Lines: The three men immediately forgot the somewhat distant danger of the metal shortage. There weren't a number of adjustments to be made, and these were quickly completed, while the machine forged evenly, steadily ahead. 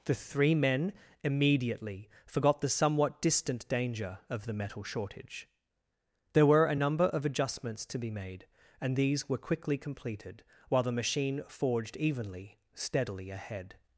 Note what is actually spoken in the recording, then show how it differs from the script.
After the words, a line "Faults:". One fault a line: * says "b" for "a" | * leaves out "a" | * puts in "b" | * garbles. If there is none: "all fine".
The three men immediately forgot the somewhat distant danger of the metal shortage. There were a number of adjustments to be made, and these were quickly completed, while the machine forged evenly, steadily ahead.
Faults:
* says "were" for "weren't"